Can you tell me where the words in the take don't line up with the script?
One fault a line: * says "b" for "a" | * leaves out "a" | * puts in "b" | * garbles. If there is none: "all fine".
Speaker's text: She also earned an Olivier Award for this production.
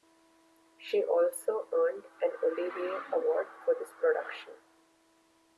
all fine